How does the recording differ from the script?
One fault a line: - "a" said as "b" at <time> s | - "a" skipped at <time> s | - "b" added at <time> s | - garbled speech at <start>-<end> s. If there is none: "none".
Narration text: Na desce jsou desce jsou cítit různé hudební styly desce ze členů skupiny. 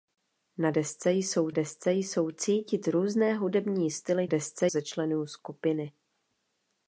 none